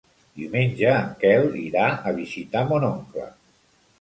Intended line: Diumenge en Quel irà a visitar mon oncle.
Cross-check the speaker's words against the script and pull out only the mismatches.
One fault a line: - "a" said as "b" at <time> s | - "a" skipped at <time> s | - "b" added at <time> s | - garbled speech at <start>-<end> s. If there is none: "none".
none